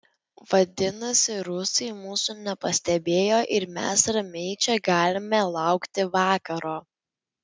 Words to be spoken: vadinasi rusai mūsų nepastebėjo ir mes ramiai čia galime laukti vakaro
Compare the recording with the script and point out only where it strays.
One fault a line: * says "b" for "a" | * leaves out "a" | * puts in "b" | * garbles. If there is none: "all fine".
all fine